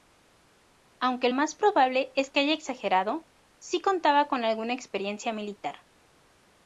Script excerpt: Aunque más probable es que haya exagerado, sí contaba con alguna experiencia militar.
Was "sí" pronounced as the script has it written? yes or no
yes